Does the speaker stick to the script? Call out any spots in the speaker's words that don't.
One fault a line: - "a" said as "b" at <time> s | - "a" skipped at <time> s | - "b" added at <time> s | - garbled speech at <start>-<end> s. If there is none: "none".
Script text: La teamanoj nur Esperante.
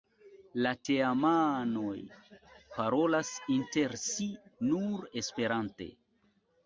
- "parolas inter si" added at 2.8 s